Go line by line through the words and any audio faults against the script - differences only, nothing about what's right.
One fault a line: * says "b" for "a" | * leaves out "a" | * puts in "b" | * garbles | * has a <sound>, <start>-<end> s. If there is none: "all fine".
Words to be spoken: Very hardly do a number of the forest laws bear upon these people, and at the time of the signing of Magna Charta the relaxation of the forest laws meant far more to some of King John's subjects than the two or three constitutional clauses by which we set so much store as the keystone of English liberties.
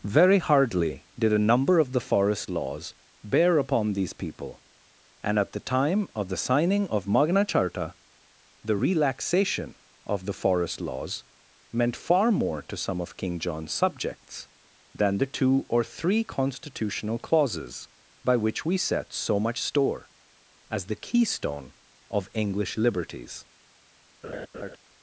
* says "did" for "do"
* has a laugh, 24.2-24.8 s